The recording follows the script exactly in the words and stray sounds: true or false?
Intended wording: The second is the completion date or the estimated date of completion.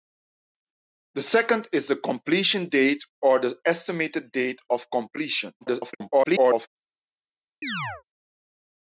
false